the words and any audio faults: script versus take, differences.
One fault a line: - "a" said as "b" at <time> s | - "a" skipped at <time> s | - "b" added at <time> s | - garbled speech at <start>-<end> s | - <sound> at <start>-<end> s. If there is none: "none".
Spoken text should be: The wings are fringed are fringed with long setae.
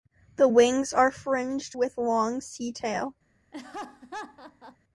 - "are fringed" skipped at 1.8 s
- laugh at 3.5-4.8 s